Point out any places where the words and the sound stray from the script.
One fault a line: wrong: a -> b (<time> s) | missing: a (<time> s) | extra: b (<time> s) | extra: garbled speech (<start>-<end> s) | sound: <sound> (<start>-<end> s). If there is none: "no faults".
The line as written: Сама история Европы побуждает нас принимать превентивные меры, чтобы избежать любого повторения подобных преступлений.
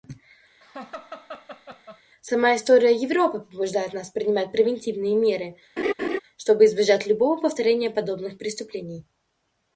sound: laugh (0.6-2.0 s)
sound: laugh (5.8-6.2 s)